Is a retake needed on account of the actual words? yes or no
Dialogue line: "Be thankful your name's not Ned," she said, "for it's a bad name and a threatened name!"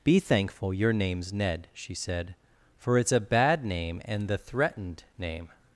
yes